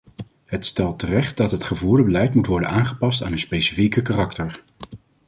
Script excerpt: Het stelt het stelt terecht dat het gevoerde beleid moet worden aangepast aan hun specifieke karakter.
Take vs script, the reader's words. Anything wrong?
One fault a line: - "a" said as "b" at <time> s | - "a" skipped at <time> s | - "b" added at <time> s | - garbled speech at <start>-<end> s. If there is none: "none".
- "het stelt" skipped at 1.0 s